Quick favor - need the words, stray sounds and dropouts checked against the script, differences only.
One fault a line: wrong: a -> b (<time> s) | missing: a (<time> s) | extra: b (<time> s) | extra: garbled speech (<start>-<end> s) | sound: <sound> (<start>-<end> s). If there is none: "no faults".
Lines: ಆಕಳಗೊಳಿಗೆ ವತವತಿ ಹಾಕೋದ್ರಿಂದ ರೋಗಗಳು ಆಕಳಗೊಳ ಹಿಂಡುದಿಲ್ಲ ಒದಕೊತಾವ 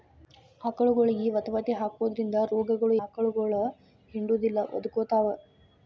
no faults